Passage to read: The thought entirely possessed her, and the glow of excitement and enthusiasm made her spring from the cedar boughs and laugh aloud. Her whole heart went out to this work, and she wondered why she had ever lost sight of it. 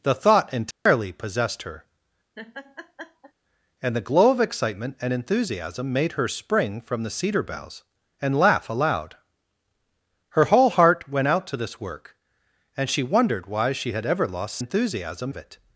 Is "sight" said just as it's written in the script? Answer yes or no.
no